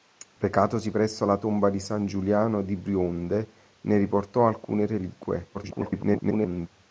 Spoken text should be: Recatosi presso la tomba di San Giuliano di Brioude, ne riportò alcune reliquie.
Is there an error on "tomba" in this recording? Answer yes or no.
no